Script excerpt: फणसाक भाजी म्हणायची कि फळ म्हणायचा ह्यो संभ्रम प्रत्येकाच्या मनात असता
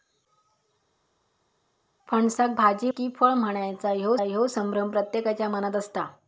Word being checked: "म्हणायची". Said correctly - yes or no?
no